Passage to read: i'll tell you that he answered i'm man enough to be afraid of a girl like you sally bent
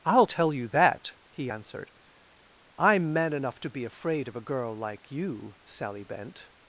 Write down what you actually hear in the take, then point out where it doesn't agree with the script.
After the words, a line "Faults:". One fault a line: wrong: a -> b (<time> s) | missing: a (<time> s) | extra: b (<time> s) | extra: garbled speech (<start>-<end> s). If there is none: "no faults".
i'll tell you that he answered i'm man enough to be afraid of a girl like you sally bent
Faults:
no faults